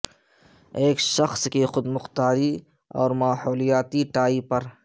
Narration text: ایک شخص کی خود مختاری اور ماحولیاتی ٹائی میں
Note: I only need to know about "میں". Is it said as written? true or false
false